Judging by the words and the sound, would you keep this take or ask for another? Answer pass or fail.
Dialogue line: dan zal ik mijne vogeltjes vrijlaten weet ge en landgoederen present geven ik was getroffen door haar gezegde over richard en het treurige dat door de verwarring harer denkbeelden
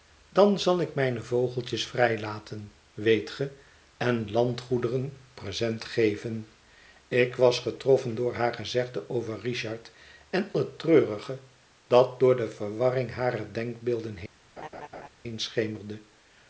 fail